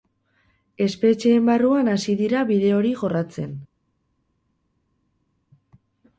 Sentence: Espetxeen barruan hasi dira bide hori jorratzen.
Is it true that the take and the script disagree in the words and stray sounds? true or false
false